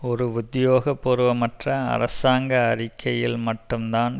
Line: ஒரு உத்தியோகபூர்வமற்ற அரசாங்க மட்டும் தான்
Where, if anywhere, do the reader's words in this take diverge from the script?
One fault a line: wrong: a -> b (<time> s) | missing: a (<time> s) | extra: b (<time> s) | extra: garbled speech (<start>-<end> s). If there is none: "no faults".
extra: அறிக்கையில் (2.7 s)